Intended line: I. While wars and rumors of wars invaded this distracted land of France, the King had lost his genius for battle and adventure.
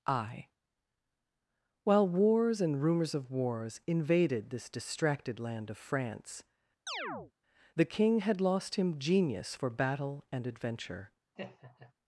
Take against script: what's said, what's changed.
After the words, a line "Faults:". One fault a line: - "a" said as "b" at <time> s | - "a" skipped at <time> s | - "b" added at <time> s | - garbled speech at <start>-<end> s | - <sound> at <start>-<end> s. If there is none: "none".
I. While wars and rumors of wars invaded this distracted land of France, the King had lost him genius for battle and adventure.
Faults:
- chirp at 6.9-7.3 s
- "his" said as "him" at 8.7 s
- laugh at 11.4-11.9 s